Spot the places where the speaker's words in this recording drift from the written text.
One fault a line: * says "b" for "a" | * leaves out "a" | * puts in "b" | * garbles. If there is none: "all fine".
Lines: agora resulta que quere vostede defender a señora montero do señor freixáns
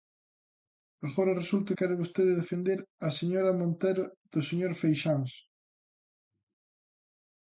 * leaves out "que"